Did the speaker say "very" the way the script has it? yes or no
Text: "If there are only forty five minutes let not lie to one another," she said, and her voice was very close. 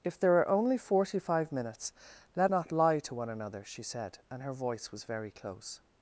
yes